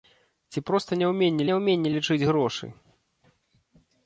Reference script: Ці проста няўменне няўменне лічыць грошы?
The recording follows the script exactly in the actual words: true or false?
true